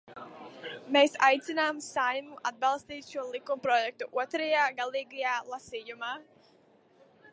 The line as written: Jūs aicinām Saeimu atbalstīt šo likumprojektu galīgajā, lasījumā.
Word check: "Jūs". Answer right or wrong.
wrong